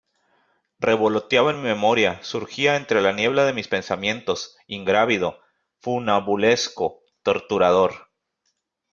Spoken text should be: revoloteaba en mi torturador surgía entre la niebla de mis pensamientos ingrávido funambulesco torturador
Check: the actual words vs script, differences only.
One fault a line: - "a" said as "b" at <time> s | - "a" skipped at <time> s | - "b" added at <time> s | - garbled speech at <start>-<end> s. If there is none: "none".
- "torturador" said as "memoria" at 1.6 s